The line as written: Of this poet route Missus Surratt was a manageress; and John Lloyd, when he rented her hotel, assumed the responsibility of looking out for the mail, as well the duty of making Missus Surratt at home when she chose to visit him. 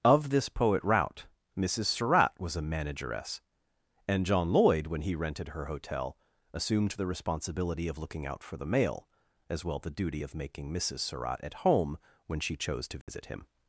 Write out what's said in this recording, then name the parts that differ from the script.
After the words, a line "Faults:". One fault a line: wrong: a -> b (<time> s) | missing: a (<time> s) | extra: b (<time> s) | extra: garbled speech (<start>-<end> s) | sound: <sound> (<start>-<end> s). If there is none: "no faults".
Of this poet route Missus Surratt was a manageress; and John Lloyd, when he rented her hotel, assumed the responsibility of looking out for the mail, as well the duty of making Missus Surratt at home when she chose to visit him.
Faults:
sound: dropout (13.0-13.1 s)